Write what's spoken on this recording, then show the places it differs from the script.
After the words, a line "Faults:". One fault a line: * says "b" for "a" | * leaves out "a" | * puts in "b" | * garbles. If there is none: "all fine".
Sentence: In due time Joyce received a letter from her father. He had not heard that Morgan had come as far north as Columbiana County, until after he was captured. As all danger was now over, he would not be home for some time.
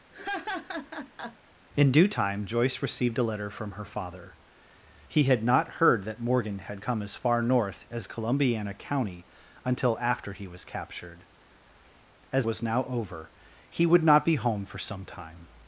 In due time Joyce received a letter from her father. He had not heard that Morgan had come as far north as Columbiana County, until after he was captured. As was now over, he would not be home for some time.
Faults:
* leaves out "all danger"